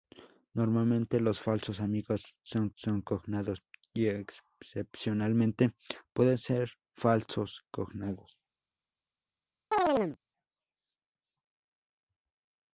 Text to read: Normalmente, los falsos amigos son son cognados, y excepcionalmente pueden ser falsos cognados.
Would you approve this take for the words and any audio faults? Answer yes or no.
no